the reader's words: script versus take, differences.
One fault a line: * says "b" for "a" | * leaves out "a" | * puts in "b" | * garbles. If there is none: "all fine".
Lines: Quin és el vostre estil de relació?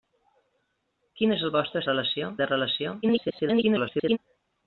* says "relació" for "estil"
* garbles